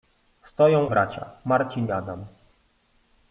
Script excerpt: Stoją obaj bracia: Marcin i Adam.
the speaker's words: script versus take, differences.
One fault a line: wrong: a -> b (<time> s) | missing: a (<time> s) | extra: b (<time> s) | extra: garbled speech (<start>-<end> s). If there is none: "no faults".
missing: obaj (0.9 s)
missing: i (1.9 s)